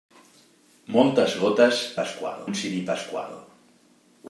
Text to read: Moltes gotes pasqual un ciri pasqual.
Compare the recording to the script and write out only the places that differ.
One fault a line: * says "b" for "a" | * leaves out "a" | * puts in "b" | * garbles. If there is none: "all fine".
all fine